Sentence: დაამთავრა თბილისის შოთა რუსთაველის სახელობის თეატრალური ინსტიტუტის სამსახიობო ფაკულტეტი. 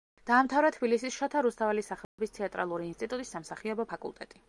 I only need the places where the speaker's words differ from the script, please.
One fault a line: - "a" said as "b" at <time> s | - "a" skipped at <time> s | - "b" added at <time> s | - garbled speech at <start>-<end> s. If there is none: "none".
none